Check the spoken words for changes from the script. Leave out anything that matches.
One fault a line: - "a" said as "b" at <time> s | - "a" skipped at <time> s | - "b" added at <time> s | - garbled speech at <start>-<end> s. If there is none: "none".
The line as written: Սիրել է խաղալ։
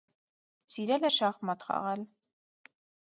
- "շախմատ" added at 1.1 s